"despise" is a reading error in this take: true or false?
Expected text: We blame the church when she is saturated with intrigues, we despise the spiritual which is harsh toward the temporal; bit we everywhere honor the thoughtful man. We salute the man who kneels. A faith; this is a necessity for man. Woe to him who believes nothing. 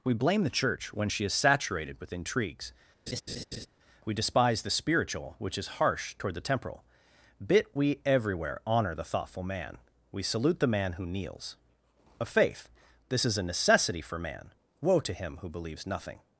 false